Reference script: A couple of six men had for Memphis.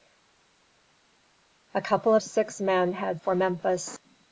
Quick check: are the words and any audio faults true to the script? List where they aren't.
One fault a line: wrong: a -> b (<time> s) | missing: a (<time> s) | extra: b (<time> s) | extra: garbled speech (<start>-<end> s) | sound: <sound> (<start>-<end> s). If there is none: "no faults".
no faults